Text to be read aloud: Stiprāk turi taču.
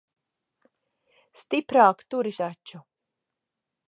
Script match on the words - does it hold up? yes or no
yes